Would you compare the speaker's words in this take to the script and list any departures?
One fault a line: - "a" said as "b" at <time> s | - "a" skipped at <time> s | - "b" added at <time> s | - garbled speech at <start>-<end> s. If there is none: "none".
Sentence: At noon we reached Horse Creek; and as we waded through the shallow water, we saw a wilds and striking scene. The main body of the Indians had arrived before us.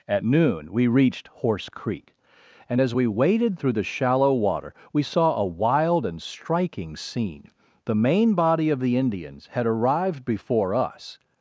- "wilds" said as "wild" at 5.4 s